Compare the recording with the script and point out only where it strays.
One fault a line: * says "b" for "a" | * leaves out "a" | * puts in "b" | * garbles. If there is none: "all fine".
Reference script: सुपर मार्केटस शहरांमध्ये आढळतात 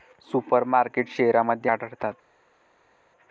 all fine